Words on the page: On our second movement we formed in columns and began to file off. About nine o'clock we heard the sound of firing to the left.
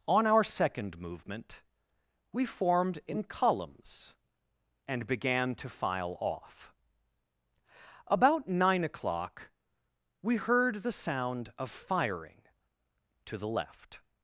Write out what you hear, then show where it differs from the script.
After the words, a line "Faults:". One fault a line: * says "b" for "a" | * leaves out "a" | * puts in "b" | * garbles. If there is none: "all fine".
On our second movement we formed in columns and began to file off. About nine o'clock we heard the sound of firing to the left.
Faults:
all fine